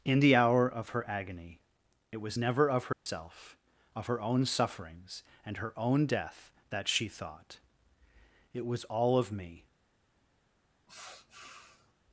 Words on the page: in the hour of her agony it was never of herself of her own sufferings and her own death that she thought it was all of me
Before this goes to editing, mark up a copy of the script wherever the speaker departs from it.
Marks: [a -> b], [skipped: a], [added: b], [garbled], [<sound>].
in the hour of her agony it was never of herself [dropout] of her own sufferings and her own death that she thought it was all of me [sniff]